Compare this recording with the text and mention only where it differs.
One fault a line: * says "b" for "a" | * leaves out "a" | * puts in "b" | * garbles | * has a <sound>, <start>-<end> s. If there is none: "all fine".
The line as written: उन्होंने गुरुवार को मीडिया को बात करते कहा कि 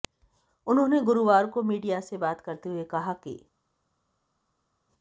* says "से" for "को"
* puts in "हुए"